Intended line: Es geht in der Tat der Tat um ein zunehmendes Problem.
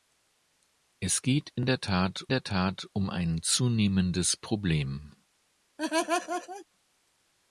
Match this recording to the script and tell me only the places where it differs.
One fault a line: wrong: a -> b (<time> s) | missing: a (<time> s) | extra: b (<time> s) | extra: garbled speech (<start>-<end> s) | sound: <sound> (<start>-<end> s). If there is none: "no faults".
sound: laugh (5.8-6.7 s)